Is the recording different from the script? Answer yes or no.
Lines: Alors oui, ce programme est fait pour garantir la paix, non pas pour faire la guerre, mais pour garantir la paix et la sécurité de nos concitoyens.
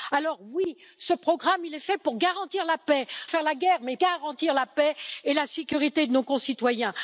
yes